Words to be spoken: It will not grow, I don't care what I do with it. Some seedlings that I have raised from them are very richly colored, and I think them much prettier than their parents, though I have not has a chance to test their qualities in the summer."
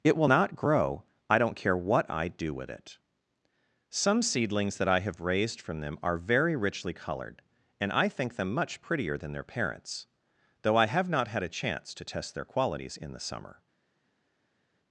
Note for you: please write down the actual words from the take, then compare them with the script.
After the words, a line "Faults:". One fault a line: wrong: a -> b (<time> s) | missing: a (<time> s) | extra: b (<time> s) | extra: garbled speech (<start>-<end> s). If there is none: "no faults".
It will not grow, I don't care what I do with it. Some seedlings that I have raised from them are very richly colored, and I think them much prettier than their parents, though I have not had a chance to test their qualities in the summer."
Faults:
wrong: has -> had (11.3 s)